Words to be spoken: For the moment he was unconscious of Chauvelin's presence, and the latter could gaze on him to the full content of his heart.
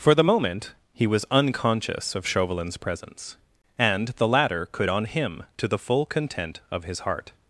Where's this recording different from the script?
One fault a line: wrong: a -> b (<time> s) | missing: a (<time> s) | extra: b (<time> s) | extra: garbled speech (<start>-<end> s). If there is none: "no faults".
missing: gaze (4.9 s)